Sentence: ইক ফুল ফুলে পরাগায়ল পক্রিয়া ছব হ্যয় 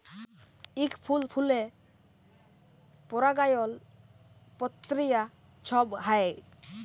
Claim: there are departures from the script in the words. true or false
false